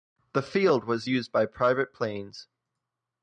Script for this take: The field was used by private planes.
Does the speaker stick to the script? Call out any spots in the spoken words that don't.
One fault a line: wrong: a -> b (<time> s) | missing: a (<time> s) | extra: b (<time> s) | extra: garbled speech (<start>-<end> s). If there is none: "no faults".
no faults